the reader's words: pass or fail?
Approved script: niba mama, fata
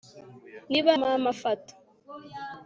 pass